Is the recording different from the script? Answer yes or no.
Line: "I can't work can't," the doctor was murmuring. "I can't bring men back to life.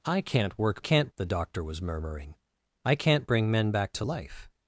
no